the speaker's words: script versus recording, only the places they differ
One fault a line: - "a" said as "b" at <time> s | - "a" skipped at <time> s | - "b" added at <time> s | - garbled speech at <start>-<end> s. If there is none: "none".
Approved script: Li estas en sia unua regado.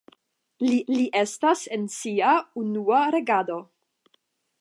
- "li" added at 0.9 s